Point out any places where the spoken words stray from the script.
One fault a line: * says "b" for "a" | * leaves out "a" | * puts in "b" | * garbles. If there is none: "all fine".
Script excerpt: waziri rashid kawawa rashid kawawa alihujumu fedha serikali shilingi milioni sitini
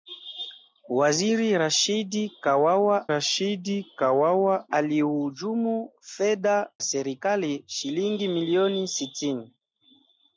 all fine